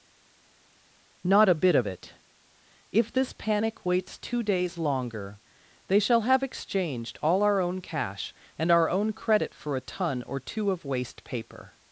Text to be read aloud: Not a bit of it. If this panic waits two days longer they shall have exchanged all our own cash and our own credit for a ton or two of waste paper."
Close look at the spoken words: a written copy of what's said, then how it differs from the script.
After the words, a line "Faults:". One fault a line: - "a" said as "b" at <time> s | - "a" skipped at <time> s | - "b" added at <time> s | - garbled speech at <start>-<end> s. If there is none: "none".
Not a bit of it. If this panic waits two days longer they shall have exchanged all our own cash and our own credit for a ton or two of waste paper."
Faults:
none